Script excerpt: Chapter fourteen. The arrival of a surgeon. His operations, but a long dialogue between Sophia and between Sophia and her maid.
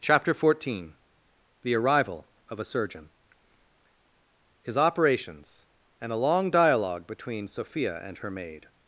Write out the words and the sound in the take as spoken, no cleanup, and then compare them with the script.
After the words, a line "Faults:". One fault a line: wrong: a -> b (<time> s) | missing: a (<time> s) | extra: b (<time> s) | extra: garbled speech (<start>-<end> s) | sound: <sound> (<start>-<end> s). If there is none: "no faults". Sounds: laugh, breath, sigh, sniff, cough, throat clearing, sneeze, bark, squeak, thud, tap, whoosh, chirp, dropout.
Chapter fourteen. The arrival of a surgeon. His operations, and a long dialogue between Sophia and her maid.
Faults:
wrong: but -> and (6.0 s)
missing: between Sophia and (8.2 s)